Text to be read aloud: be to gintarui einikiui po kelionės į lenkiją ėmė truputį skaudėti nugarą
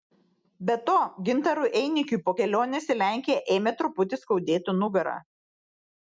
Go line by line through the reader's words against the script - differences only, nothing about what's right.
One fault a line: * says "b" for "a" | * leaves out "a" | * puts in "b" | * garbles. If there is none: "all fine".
all fine